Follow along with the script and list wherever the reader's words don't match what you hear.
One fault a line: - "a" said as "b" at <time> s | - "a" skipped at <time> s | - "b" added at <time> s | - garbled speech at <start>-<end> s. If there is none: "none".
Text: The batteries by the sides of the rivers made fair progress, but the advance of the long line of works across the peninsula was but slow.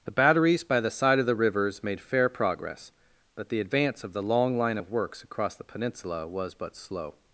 - "sides" said as "side" at 0.9 s